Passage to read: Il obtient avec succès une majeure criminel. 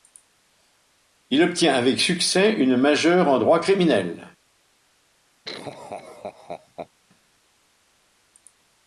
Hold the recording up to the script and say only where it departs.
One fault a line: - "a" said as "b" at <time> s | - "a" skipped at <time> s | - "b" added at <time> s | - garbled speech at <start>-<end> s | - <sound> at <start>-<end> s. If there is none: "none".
- "en droit" added at 3.3 s
- laugh at 5.4-6.9 s